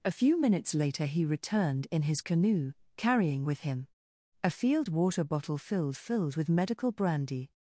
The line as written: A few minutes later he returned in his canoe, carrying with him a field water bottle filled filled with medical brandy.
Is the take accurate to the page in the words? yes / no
yes